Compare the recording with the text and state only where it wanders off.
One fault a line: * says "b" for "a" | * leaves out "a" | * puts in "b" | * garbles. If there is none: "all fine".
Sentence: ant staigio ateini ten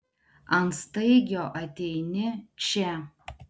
* says "čia" for "ten"